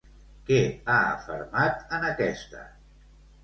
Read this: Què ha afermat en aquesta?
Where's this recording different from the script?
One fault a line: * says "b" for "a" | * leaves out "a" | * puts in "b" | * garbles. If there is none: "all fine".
all fine